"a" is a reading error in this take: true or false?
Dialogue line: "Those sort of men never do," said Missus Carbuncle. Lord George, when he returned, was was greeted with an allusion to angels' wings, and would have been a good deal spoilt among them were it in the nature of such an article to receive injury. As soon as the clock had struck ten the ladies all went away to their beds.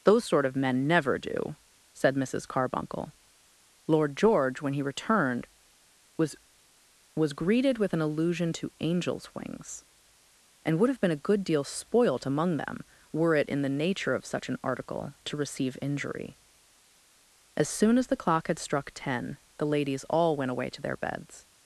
false